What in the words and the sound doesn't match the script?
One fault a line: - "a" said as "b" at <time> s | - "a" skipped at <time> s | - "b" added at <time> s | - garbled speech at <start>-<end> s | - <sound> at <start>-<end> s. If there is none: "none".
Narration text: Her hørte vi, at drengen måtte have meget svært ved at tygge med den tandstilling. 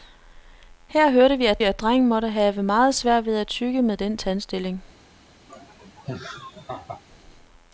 - "at" added at 1.6 s
- laugh at 5.5-7.0 s